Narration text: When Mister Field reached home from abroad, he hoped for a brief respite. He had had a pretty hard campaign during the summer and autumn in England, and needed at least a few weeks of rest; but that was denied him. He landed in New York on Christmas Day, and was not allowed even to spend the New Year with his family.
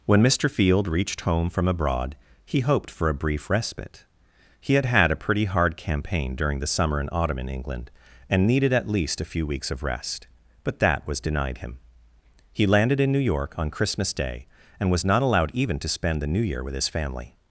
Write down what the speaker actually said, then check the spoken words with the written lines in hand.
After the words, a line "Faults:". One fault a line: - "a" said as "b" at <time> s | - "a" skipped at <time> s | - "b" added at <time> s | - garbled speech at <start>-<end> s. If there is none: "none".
When Mister Field reached home from abroad, he hoped for a brief respite. He had had a pretty hard campaign during the summer and autumn in England, and needed at least a few weeks of rest; but that was denied him. He landed in New York on Christmas Day, and was not allowed even to spend the New Year with his family.
Faults:
none